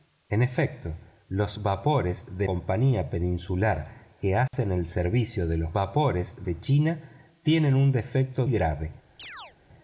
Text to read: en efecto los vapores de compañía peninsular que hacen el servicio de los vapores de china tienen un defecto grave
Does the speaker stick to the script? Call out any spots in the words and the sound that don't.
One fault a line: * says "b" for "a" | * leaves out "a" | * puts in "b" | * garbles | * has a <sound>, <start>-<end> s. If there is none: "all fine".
* has a dropout, 4.5-4.5 s
* has a chirp, 9.2-9.5 s